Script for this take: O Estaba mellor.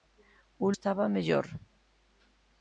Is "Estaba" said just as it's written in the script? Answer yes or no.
yes